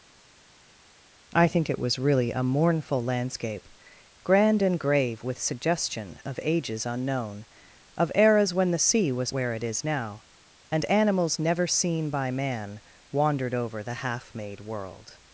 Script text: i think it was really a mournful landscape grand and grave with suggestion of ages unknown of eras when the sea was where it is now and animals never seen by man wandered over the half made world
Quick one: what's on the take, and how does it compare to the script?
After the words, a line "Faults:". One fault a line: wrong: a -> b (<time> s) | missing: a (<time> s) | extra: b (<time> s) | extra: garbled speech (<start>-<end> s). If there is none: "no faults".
i think it was really a mournful landscape grand and grave with suggestion of ages unknown of eras when the sea was where it is now and animals never seen by man wandered over the half made world
Faults:
no faults